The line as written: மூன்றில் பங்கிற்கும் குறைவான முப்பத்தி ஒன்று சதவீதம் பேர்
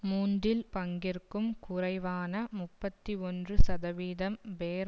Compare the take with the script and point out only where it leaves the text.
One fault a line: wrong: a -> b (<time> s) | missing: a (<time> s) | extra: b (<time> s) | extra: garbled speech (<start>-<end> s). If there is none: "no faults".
no faults